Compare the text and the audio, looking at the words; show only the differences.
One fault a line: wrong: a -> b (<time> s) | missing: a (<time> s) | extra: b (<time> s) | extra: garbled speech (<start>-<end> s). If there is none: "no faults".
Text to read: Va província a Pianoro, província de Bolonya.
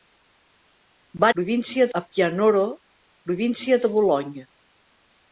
no faults